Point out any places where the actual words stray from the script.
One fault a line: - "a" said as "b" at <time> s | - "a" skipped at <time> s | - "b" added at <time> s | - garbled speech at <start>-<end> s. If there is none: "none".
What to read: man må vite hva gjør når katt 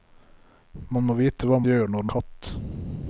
none